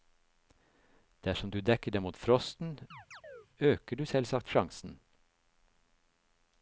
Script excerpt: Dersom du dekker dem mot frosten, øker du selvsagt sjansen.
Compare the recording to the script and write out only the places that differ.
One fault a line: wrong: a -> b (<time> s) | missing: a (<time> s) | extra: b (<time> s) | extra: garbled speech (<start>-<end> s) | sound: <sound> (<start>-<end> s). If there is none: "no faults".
sound: chirp (2.9-3.5 s)